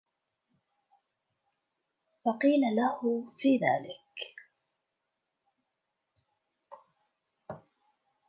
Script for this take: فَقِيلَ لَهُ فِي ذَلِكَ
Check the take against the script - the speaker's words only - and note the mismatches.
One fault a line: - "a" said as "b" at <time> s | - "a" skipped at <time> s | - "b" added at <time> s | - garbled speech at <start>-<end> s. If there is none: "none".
none